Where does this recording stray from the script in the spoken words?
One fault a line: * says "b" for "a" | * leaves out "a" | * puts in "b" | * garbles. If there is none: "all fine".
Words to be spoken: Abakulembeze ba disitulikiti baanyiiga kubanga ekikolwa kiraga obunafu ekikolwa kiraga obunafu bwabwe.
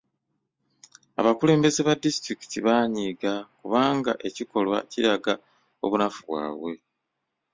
* leaves out "ekikolwa kiraga obunafu"